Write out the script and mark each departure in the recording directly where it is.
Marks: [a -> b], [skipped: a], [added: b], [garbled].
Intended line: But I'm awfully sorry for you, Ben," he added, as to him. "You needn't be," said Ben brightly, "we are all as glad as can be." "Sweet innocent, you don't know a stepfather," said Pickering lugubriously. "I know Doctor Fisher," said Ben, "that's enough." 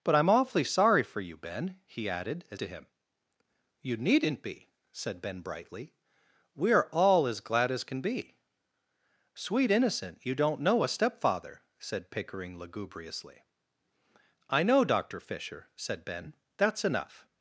But I'm awfully sorry for you, Ben," he added, as to him. "You needn't be," said Ben brightly, "we are all as glad as can be." "Sweet innocent, you don't know a stepfather," said Pickering lugubriously. "I know Doctor Fisher," said Ben, "that's enough."